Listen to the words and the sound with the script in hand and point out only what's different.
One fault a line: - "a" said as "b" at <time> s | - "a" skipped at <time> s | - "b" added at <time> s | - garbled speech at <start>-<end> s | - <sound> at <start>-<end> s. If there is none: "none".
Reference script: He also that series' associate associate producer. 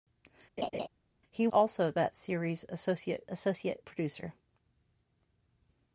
- laugh at 0.6-0.9 s